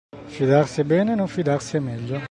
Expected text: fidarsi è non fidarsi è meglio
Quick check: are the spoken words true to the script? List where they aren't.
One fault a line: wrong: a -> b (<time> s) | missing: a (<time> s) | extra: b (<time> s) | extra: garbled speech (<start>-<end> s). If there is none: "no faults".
extra: bene (0.8 s)